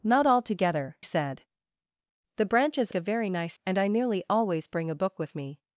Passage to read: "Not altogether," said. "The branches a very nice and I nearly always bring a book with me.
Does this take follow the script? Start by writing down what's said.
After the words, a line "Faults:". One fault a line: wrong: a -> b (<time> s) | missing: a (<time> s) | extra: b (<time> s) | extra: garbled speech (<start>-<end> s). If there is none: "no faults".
"Not altogether," said. "The branches a very nice and I nearly always bring a book with me.
Faults:
no faults